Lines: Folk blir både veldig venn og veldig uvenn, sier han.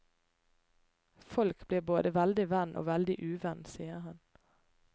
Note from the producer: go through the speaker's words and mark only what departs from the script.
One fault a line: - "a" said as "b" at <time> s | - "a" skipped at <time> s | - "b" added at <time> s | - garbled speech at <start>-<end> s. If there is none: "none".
none